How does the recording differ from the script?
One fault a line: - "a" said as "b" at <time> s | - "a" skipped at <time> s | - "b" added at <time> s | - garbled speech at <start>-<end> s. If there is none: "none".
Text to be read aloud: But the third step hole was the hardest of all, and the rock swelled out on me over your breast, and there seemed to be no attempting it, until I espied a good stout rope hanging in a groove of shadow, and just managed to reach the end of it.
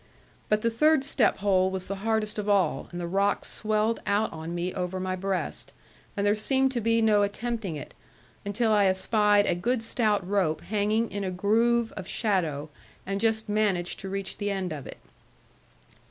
- "your" said as "my" at 5.0 s